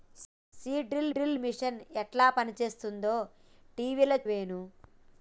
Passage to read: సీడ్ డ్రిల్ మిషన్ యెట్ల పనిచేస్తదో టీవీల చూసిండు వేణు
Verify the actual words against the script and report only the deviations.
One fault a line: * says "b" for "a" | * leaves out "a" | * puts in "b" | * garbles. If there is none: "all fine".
* puts in "డ్రిల్"
* leaves out "చూసిండు"